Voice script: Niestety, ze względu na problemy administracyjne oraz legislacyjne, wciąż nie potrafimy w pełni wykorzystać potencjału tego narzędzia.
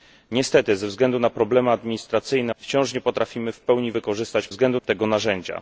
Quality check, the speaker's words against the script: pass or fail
fail